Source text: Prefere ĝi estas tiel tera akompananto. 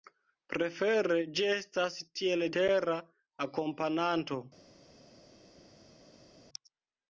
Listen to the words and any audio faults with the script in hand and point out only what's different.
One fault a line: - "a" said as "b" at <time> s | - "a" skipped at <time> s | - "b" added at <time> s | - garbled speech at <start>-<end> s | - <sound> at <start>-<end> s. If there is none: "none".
none